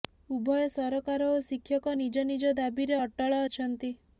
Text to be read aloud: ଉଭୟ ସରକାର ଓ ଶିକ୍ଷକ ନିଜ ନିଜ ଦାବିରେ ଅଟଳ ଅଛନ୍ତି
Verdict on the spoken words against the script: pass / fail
pass